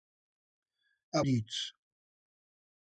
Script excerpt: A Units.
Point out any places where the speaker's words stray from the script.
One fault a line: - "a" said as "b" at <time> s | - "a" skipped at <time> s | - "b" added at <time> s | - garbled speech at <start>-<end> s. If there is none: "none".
none